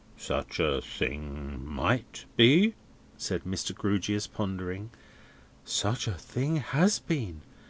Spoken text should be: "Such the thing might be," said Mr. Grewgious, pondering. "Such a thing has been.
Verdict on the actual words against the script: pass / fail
fail